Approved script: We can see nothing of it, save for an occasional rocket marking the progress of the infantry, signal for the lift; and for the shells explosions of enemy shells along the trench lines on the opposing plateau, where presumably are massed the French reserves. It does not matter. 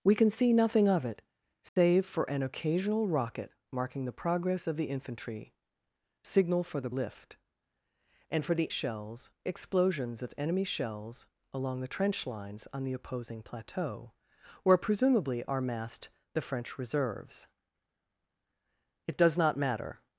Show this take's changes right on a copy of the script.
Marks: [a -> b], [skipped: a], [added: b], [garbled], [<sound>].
We can see nothing of it, save [dropout] for an occasional rocket marking the progress of the infantry, signal for the lift; and for the shells explosions of enemy shells along the trench lines on the opposing plateau, where presumably are massed the French reserves. It does not matter.